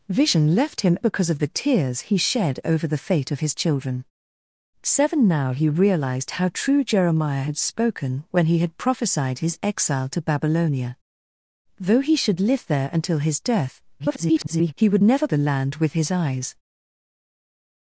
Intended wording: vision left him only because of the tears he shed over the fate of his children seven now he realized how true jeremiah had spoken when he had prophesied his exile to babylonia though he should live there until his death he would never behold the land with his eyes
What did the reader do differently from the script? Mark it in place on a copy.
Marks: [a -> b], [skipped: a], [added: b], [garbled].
vision left him [skipped: only] because of the tears he shed over the fate of his children seven now he realized how true jeremiah had spoken when he had prophesied his exile to babylonia though he should live there until his death [garbled] he would never [skipped: behold] the land with his eyes